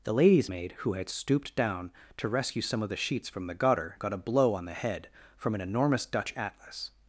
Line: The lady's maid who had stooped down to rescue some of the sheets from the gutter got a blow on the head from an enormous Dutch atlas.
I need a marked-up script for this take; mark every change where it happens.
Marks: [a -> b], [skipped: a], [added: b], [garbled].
The lady's maid who had stooped down to rescue some of the sheets from the gutter got a blow on the head from an enormous Dutch atlas.